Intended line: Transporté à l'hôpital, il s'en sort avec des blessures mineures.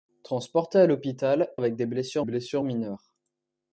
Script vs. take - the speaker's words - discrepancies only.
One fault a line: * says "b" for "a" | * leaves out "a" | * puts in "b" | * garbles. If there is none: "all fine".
* leaves out "il s'en sort"
* puts in "blessures"